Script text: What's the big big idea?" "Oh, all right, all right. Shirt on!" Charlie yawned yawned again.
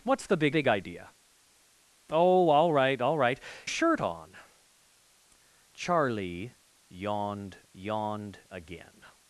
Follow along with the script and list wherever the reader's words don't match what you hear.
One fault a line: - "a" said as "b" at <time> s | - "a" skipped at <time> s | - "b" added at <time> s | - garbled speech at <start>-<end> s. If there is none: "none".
none